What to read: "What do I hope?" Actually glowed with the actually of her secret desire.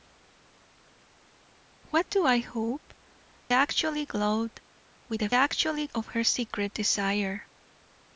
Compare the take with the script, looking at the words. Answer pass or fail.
pass